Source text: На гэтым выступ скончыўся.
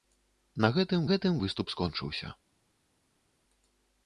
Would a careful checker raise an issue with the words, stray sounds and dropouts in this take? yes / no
yes